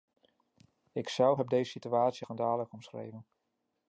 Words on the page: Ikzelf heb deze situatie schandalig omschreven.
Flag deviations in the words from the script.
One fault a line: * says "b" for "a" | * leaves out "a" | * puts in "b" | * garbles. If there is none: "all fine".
all fine